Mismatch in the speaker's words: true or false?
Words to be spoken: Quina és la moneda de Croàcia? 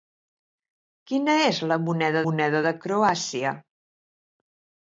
true